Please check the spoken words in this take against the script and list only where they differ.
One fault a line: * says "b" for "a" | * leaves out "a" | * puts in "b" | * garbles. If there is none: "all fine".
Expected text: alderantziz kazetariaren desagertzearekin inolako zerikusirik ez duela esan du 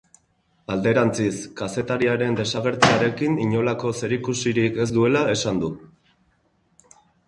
all fine